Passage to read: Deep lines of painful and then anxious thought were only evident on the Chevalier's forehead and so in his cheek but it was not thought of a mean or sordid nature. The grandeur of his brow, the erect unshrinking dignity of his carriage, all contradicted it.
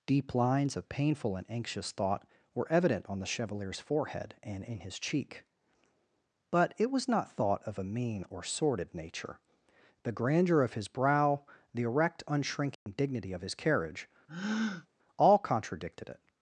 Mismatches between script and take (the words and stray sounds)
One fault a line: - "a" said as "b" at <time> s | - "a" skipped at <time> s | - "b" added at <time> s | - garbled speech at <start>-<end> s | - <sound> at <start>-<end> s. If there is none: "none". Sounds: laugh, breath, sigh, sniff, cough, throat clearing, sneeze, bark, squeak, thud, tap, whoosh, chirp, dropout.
- "then" skipped at 1.5 s
- "only" skipped at 2.7 s
- "so" skipped at 4.6 s
- dropout at 12.7-12.9 s
- breath at 14.3-14.9 s